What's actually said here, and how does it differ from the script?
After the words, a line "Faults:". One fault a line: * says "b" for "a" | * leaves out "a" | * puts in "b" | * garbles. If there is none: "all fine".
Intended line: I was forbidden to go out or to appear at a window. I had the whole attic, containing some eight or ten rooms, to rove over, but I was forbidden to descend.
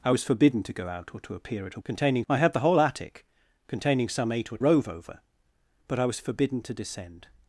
I was forbidden to go out or to appear at a containing. I had the whole attic, containing some eight or rove over, but I was forbidden to descend.
Faults:
* says "containing" for "window"
* leaves out "ten rooms to"